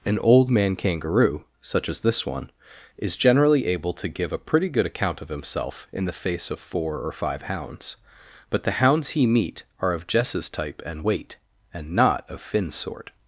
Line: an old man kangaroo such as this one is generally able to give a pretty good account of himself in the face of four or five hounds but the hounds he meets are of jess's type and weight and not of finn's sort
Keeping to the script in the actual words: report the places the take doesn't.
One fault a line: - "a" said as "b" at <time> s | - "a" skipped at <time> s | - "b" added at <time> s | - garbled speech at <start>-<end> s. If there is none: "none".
- "meets" said as "meet" at 9.3 s